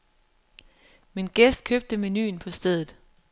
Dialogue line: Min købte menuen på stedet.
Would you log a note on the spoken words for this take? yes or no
yes